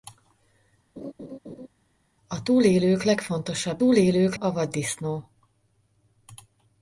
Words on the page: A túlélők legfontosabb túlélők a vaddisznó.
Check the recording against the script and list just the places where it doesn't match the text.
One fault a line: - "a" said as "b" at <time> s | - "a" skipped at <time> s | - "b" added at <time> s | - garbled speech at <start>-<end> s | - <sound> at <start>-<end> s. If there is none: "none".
- laugh at 1.0-1.7 s